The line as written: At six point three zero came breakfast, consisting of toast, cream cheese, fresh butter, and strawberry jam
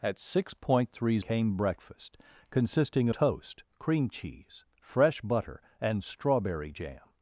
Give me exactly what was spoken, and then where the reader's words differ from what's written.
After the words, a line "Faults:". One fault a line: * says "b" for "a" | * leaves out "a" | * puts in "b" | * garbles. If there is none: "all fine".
At six point three came breakfast, consisting toast, cream cheese, fresh butter, and strawberry jam
Faults:
* leaves out "zero"
* leaves out "of"